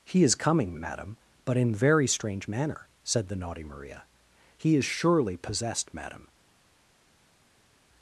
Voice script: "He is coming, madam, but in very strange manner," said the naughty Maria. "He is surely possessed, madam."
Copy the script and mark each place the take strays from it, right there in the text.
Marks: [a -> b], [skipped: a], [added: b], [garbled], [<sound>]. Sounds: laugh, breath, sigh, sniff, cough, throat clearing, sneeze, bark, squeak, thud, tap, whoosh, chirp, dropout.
"He is coming, madam, but in very strange manner," said the naughty Maria. "He is surely possessed, madam."